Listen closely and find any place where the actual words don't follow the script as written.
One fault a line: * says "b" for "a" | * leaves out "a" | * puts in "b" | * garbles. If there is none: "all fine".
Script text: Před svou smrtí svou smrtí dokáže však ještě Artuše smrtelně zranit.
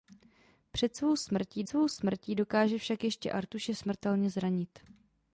all fine